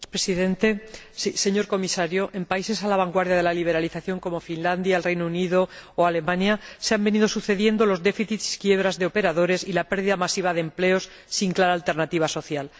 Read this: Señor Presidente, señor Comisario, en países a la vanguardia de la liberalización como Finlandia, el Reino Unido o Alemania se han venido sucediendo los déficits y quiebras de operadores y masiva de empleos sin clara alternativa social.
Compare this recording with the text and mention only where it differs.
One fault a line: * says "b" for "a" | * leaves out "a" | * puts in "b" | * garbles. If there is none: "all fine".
* puts in "la pérdida"